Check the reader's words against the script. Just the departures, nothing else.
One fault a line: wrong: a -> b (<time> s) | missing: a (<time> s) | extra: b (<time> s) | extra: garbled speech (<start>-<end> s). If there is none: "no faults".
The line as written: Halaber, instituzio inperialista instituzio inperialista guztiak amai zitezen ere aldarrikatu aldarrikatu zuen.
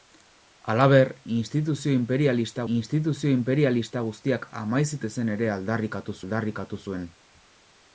no faults